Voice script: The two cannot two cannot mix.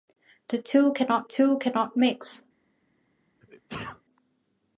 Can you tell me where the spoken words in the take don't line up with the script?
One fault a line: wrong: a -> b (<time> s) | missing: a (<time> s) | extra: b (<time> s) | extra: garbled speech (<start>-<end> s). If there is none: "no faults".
no faults